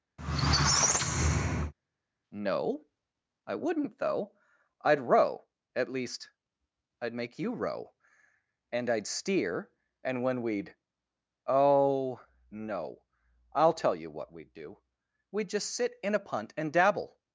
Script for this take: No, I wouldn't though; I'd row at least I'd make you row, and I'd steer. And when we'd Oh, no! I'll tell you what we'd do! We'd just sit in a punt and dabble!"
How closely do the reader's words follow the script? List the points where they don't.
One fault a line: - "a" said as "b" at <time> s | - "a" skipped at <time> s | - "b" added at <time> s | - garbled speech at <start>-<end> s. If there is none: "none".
none